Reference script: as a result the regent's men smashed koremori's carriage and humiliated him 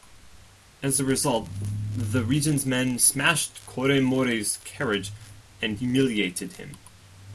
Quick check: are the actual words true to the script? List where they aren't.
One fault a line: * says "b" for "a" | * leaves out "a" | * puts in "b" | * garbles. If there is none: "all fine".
all fine